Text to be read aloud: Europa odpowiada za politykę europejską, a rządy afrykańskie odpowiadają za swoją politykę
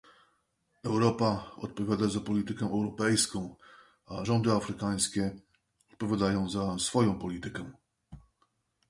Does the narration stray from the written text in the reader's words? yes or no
no